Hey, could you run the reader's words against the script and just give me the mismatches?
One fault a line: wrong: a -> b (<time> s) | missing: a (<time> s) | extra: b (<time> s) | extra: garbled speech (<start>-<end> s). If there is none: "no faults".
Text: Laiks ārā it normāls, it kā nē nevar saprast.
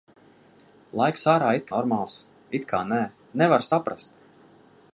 no faults